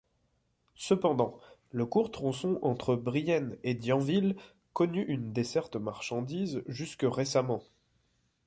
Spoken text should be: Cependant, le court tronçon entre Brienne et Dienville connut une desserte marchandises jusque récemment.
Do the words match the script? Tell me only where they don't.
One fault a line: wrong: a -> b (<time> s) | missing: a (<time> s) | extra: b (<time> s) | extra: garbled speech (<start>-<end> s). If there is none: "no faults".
no faults